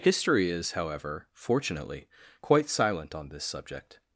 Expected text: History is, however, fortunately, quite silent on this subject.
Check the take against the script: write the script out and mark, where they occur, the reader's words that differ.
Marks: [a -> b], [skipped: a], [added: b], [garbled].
History is, however, fortunately, quite silent on this subject.